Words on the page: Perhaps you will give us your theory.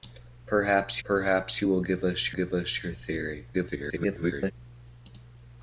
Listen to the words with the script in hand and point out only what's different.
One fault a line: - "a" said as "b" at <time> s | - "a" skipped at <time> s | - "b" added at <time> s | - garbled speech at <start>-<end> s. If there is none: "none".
- "perhaps" added at 1.0 s
- "give us" added at 2.3 s
- garbled speech at 3.5-4.5 s